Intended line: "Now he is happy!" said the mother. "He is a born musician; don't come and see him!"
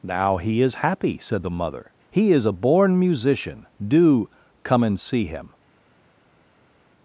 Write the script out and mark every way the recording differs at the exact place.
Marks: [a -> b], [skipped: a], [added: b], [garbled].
"Now he is happy!" said the mother. "He is a born musician; [don't -> do] come and see him!"